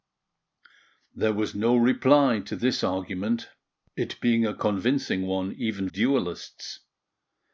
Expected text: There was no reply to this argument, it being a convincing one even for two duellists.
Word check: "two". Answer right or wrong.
wrong